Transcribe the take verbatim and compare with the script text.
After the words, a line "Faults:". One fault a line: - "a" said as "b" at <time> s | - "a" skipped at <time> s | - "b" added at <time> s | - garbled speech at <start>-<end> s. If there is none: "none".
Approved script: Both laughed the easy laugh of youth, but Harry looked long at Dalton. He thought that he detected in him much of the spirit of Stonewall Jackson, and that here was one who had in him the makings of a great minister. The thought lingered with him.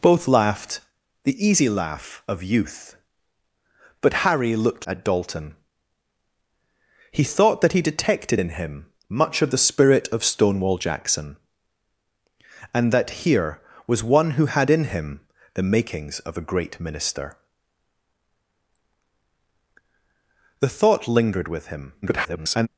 Both laughed the easy laugh of youth, but Harry looked at Dalton. He thought that he detected in him much of the spirit of Stonewall Jackson, and that here was one who had in him the makings of a great minister. The thought lingered with him. [garbled]
Faults:
- "long" skipped at 4.9 s
- garbled speech at 22.0-22.7 s